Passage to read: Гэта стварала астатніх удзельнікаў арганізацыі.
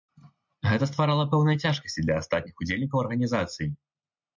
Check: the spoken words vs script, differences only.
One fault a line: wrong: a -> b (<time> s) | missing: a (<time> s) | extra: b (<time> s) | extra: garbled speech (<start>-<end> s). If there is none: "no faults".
extra: пэўныя цяжкасці для (1.4 s)